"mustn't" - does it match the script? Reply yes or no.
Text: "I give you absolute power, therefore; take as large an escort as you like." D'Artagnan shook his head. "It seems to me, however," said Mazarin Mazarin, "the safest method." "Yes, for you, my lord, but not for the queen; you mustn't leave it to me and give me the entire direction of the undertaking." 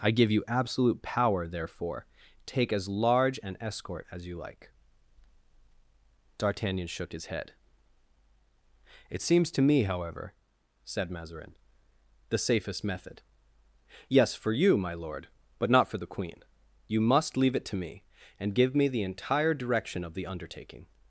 no